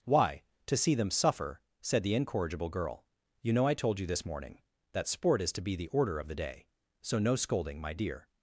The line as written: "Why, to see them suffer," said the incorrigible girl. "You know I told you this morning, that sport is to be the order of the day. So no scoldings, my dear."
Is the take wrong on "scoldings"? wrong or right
wrong